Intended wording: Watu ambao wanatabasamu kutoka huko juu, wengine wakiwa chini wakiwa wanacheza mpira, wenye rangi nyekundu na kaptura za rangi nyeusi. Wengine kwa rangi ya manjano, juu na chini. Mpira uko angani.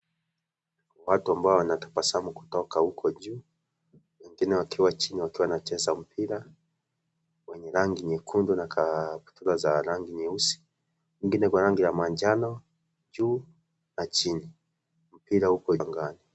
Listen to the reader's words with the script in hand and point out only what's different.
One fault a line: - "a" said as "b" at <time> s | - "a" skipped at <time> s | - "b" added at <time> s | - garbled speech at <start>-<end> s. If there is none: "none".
none